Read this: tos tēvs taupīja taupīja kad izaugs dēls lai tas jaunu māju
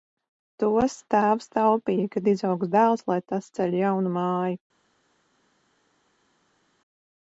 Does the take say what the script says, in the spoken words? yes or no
no